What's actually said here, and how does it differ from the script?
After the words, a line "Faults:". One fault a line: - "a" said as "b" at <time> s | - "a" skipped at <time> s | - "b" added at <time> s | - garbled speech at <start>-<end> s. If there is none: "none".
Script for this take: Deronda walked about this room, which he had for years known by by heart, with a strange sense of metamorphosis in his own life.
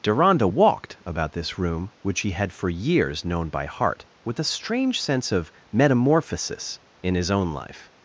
Deronda walked about this room, which he had for years known by heart, with a strange sense of metamorphosis in his own life.
Faults:
- "by" skipped at 3.6 s